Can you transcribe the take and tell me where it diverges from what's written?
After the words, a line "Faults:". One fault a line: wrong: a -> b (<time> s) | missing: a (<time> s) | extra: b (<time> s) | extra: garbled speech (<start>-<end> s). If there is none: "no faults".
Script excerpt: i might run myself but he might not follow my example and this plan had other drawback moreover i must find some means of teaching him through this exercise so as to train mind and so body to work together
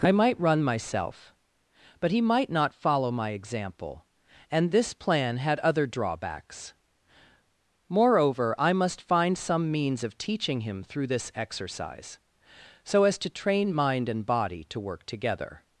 i might run myself but he might not follow my example and this plan had other drawbacks moreover i must find some means of teaching him through this exercise so as to train mind and body to work together
Faults:
wrong: drawback -> drawbacks (5.8 s)
missing: so (14.2 s)